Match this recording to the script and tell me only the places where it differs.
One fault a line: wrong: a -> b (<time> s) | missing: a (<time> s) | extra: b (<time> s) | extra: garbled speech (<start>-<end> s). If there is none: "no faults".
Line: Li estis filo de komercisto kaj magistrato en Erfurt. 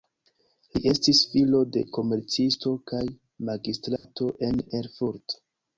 no faults